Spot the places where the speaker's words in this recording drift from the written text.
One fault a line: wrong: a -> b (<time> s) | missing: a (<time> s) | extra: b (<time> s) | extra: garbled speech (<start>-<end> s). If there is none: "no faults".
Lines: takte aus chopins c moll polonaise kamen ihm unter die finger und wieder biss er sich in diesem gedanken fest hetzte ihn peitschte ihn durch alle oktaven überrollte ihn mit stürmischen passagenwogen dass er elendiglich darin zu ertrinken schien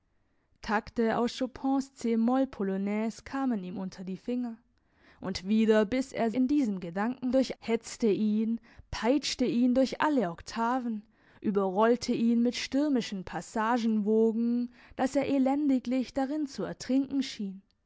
missing: sich (6.3 s)
wrong: fest -> durch (7.3 s)